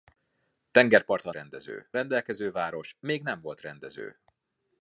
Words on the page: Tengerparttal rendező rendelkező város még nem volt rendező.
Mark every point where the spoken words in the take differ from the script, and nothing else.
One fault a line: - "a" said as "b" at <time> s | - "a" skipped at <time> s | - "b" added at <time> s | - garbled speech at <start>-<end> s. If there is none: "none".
none